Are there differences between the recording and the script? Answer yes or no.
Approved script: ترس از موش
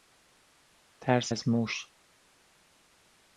no